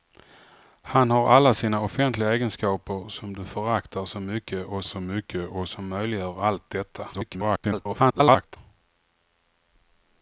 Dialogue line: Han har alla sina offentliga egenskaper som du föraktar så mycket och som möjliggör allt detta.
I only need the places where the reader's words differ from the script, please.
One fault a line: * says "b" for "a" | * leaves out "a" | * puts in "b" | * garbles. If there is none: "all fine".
* puts in "så mycket och"
* garbles